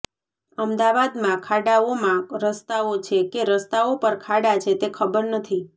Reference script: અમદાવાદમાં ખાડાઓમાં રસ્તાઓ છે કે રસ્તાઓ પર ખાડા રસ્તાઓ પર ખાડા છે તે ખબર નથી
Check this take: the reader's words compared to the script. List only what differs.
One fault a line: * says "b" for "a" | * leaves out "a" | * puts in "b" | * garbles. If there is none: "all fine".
* leaves out "રસ્તાઓ પર ખાડા"